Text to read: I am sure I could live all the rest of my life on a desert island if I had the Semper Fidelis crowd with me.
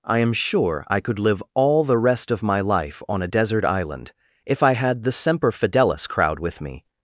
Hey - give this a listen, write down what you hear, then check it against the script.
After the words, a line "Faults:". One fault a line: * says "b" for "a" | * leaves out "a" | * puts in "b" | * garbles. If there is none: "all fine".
I am sure I could live all the rest of my life on a desert island if I had the Semper Fidelis crowd with me.
Faults:
all fine